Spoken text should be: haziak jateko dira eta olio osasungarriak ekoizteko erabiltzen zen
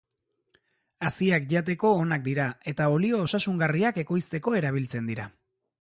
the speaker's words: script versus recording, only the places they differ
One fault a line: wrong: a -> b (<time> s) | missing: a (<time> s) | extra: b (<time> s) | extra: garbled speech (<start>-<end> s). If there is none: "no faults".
extra: onak (2.0 s)
wrong: zen -> dira (5.1 s)